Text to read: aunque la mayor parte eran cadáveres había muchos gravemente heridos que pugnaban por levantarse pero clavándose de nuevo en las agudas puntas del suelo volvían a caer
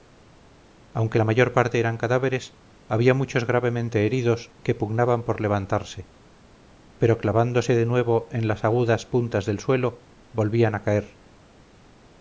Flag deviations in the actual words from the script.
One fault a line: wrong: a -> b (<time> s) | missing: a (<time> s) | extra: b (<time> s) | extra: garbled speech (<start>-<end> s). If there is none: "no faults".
no faults